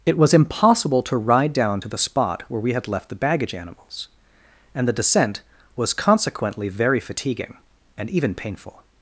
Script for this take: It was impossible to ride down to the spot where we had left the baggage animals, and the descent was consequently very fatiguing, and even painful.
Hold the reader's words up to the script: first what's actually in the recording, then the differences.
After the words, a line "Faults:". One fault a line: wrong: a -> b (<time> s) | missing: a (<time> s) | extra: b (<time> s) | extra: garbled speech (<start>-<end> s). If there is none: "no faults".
It was impossible to ride down to the spot where we had left the baggage animals, and the descent was consequently very fatiguing, and even painful.
Faults:
no faults